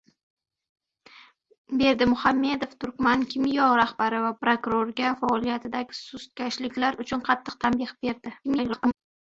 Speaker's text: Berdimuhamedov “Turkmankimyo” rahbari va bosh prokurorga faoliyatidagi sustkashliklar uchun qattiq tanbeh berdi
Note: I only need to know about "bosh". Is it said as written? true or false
false